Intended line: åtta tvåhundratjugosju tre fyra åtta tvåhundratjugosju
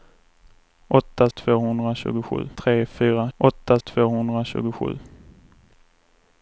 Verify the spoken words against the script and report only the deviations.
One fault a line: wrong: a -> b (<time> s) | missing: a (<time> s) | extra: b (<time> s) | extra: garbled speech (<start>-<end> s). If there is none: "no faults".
no faults